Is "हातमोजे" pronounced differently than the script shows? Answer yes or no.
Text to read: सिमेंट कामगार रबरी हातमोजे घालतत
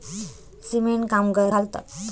yes